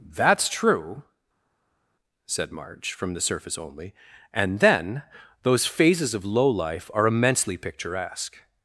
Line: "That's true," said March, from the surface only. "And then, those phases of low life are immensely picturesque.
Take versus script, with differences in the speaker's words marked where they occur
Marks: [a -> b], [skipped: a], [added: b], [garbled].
"That's true," said March, from the surface only. "And then, those phases of low life are immensely picturesque.